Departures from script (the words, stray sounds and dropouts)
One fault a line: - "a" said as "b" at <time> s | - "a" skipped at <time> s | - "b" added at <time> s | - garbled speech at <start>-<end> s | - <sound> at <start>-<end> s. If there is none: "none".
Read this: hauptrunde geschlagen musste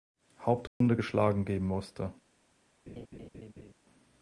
- dropout at 0.7-0.8 s
- "geben" added at 1.4 s
- laugh at 2.9-3.7 s